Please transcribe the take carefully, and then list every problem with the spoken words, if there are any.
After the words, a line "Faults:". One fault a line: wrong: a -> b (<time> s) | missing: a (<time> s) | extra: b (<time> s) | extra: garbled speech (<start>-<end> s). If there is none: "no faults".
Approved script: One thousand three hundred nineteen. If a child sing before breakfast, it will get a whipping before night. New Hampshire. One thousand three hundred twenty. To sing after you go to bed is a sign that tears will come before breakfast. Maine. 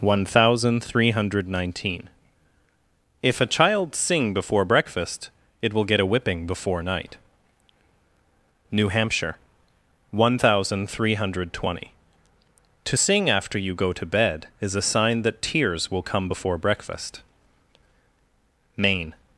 One thousand three hundred nineteen. If a child sing before breakfast, it will get a whipping before night. New Hampshire. One thousand three hundred twenty. To sing after you go to bed is a sign that tears will come before breakfast. Maine.
Faults:
no faults